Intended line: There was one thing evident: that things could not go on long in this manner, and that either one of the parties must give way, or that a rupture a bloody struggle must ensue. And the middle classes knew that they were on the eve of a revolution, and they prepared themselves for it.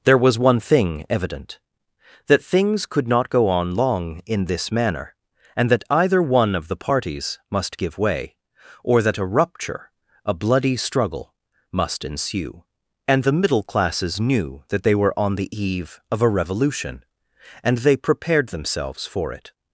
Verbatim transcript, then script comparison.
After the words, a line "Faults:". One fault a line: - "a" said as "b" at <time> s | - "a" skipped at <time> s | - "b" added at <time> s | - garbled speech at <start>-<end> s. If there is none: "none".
There was one thing evident: that things could not go on long in this manner, and that either one of the parties must give way, or that a rupture a bloody struggle must ensue. And the middle classes knew that they were on the eve of a revolution, and they prepared themselves for it.
Faults:
none